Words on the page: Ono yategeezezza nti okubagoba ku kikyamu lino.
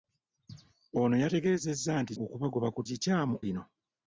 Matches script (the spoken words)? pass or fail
pass